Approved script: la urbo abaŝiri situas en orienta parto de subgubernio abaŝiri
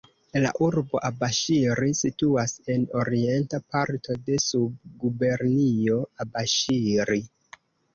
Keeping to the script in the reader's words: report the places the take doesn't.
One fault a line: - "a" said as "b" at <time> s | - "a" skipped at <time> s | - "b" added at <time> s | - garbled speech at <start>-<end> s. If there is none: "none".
none